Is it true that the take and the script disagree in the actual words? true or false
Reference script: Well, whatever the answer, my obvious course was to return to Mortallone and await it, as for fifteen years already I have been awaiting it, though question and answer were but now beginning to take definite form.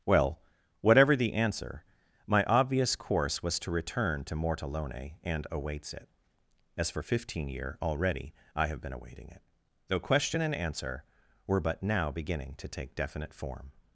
true